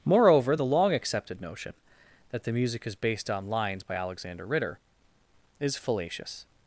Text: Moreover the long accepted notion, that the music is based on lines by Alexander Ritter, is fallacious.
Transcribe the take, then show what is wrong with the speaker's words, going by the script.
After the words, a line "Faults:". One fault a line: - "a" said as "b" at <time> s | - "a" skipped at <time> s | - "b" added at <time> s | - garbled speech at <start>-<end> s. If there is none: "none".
Moreover the long accepted notion, that the music is based on lines by Alexander Ritter, is fallacious.
Faults:
none